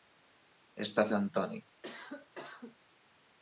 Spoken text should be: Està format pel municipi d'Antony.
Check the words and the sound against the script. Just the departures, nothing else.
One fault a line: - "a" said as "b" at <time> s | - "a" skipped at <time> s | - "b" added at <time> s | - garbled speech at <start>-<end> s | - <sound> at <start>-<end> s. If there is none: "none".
- "format pel municipi" skipped at 1.1 s
- cough at 1.8-2.8 s